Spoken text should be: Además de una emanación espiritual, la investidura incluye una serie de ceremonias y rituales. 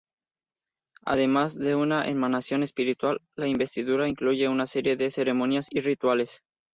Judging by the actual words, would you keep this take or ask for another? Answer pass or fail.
pass